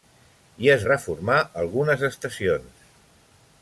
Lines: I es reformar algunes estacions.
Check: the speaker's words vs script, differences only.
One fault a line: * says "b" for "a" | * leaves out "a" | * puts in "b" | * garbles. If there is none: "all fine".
all fine